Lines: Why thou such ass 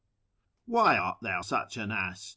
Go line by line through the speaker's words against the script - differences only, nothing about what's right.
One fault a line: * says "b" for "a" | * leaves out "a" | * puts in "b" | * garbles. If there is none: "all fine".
* puts in "art"
* puts in "an"